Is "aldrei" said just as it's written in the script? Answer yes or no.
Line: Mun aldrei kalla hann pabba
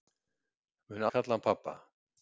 no